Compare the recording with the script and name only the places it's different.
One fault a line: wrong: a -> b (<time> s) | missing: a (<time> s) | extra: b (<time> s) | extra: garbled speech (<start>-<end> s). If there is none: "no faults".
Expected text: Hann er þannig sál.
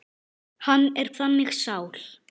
no faults